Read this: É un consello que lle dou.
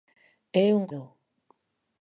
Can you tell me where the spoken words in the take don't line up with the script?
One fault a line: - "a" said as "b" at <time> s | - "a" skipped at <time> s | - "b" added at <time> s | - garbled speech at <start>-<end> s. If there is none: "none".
- "consello que lle" skipped at 0.8 s